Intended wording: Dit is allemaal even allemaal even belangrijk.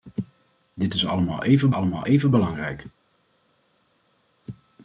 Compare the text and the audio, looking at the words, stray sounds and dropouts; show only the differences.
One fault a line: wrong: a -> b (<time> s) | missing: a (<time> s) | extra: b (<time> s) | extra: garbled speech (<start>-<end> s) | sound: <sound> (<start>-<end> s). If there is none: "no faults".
no faults